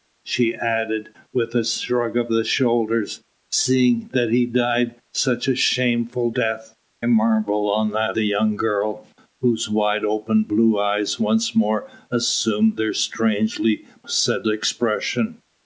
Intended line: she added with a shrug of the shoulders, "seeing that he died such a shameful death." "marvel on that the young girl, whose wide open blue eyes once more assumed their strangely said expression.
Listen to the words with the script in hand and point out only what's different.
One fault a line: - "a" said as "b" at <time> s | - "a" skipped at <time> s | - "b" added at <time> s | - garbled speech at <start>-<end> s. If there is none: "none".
none